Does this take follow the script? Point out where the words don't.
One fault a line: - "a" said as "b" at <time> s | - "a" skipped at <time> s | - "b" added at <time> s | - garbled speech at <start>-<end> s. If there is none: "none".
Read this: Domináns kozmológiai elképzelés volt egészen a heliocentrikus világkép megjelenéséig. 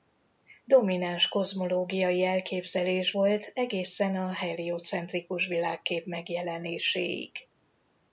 none